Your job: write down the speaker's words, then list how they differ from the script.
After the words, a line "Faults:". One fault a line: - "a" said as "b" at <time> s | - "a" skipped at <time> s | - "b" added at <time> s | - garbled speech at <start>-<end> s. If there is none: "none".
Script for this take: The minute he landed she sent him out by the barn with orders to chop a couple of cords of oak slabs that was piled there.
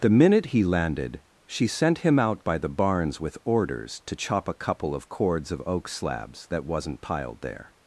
The minute he landed she sent him out by the barns with orders to chop a couple of cords of oak slabs that wasn't piled there.
Faults:
- "barn" said as "barns" at 2.7 s
- "was" said as "wasn't" at 6.6 s